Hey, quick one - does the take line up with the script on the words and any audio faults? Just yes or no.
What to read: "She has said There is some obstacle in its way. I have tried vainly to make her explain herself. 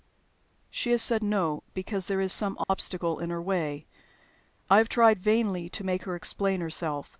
no